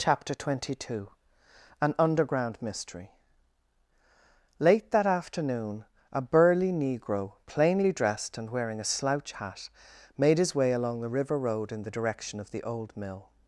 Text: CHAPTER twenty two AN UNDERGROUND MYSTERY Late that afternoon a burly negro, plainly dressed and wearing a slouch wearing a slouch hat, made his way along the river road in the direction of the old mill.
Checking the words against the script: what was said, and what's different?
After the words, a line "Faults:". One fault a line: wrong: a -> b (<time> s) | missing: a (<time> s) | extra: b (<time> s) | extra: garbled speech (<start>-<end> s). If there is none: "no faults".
CHAPTER twenty two AN UNDERGROUND MYSTERY Late that afternoon a burly negro, plainly dressed and wearing a slouch hat, made his way along the river road in the direction of the old mill.
Faults:
missing: wearing a slouch (9.3 s)